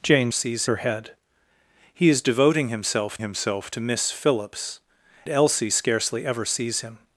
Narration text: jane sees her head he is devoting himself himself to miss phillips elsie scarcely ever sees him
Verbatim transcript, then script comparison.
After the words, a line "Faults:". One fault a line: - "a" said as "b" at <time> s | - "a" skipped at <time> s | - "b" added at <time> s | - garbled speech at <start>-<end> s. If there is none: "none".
jane sees her head he is devoting himself himself to miss phillips elsie scarcely ever sees him
Faults:
none